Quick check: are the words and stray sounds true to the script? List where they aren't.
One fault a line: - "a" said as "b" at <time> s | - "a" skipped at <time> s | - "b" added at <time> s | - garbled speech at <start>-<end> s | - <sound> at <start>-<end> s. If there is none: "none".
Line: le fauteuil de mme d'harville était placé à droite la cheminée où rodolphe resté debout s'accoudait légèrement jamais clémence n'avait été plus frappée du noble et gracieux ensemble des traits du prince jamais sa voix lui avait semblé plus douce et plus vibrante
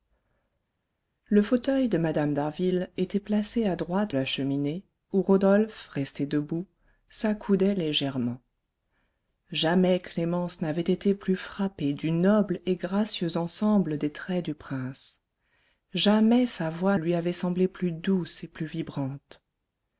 none